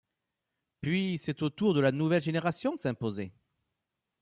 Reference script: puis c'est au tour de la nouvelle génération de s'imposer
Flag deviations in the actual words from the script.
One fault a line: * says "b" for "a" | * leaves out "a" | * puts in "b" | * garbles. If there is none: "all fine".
all fine